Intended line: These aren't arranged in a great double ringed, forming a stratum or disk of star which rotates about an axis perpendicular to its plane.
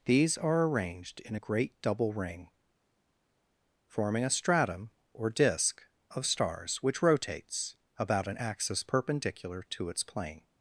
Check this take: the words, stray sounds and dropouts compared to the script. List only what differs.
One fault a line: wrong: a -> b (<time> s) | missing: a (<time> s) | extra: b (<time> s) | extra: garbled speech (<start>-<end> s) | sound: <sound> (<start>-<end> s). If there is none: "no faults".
wrong: aren't -> are (0.4 s)
wrong: ringed -> ring (2.1 s)
wrong: star -> stars (6.3 s)